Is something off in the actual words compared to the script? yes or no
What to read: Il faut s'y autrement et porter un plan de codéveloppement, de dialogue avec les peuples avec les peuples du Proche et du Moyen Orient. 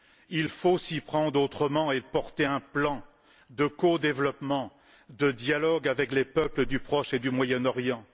yes